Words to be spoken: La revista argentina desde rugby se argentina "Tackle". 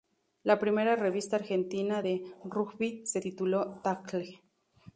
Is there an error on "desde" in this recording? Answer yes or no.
yes